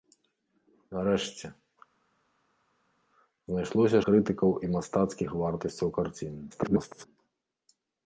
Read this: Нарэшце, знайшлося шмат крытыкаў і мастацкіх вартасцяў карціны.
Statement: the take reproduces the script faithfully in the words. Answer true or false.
false